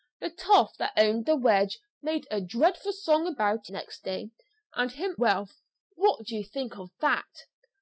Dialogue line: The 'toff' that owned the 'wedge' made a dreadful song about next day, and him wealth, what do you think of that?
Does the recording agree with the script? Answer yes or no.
yes